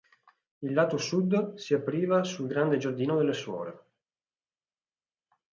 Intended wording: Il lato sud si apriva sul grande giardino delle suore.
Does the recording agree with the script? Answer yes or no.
yes